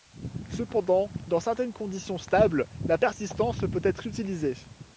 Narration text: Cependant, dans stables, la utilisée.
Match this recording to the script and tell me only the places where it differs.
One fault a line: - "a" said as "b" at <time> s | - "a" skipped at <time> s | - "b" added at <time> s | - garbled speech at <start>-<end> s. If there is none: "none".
- "certaines conditions" added at 1.4 s
- "persistance peut être" added at 2.9 s